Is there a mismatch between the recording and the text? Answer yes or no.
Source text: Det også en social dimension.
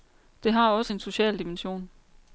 yes